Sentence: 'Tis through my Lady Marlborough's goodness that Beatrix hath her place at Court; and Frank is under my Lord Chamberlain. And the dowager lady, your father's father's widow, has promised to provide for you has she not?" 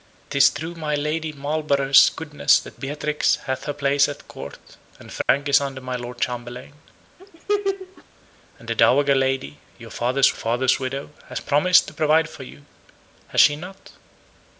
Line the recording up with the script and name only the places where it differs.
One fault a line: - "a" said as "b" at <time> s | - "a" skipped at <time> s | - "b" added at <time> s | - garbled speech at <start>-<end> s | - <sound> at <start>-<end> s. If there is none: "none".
- dropout at 5.2-5.3 s
- laugh at 7.2-8.0 s